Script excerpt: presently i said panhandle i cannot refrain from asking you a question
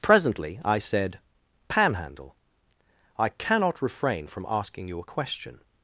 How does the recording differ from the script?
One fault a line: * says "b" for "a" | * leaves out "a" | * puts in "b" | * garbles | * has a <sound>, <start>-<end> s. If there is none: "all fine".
all fine